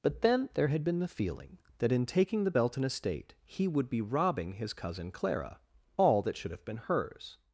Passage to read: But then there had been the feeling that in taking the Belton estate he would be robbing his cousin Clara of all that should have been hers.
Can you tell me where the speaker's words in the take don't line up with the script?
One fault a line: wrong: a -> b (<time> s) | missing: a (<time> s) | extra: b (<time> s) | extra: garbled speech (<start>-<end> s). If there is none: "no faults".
missing: of (5.6 s)